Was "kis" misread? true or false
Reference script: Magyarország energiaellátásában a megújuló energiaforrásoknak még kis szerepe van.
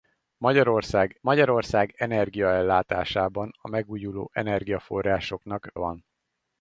true